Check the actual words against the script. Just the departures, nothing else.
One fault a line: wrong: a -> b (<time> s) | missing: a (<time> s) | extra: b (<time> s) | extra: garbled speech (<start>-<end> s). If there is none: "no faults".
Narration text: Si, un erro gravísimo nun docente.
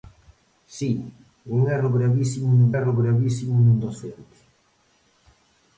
extra: erro gravísimo nun (2.8 s)